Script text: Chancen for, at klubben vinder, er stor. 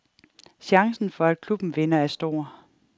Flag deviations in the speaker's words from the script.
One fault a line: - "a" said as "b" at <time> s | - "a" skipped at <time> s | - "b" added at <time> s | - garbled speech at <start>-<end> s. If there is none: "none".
none